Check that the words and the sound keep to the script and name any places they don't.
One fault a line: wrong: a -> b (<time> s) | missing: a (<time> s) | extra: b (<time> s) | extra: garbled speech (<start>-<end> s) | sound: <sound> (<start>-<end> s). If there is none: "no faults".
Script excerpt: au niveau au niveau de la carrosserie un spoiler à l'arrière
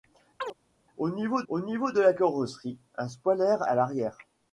sound: chirp (0.4-0.5 s)